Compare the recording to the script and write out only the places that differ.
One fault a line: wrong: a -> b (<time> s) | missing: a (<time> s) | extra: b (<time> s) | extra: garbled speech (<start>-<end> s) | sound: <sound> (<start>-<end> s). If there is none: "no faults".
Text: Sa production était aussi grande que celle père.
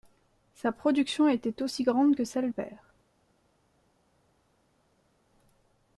no faults